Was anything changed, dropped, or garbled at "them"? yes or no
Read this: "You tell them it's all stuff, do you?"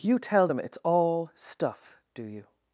no